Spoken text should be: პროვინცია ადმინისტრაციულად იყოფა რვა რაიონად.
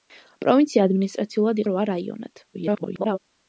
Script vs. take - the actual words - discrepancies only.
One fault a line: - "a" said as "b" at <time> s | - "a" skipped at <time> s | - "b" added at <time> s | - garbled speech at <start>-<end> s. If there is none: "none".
- "იყოფა" skipped at 1.6 s
- garbled speech at 2.5-3.2 s